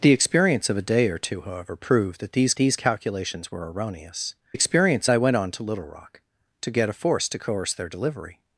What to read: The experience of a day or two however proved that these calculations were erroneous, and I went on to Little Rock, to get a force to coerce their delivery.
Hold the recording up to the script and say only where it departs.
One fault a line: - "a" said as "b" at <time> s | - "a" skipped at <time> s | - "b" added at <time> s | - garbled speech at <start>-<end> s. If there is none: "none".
- "these" added at 2.6 s
- "and" said as "experience" at 4.5 s